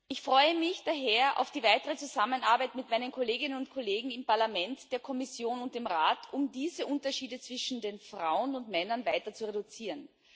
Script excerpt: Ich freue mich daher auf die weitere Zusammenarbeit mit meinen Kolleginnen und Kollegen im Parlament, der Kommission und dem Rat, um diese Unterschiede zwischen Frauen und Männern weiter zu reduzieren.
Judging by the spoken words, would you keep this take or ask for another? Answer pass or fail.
pass